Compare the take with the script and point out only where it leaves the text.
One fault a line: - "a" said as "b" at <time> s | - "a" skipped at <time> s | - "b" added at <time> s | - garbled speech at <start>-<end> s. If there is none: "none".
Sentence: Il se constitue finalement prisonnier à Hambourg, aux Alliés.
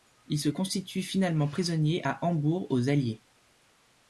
none